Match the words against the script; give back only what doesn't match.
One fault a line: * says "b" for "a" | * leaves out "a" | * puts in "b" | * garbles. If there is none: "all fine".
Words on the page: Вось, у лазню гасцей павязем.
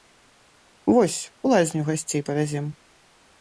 all fine